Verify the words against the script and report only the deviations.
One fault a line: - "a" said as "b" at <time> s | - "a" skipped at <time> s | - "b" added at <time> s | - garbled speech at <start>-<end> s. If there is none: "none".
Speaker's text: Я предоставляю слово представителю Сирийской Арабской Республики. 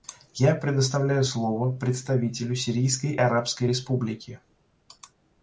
none